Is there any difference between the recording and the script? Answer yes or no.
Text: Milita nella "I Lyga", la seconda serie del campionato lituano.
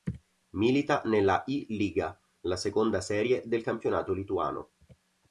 no